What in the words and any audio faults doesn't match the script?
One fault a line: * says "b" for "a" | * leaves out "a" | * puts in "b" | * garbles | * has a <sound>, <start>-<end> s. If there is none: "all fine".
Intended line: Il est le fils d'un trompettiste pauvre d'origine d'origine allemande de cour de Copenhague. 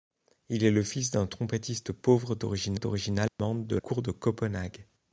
* has a dropout, 3.3-3.4 s